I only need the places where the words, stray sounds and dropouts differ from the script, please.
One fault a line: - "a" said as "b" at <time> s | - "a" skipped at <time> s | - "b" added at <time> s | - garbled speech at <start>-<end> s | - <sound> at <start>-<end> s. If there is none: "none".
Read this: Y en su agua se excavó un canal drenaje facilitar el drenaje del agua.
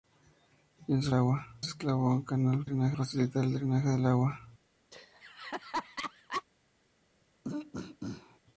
- laugh at 4.9-6.4 s
- throat clearing at 7.4-8.4 s